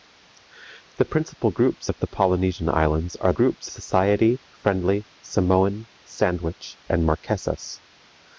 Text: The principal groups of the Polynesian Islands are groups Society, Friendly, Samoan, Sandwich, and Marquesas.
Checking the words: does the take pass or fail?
pass